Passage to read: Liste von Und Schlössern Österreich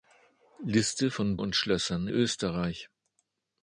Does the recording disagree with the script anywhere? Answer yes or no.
no